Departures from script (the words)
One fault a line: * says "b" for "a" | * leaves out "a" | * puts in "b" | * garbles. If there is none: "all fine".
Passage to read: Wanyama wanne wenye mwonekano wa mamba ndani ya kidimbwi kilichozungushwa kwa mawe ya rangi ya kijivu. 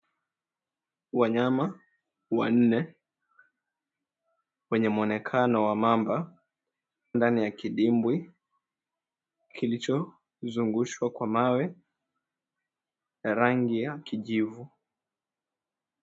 all fine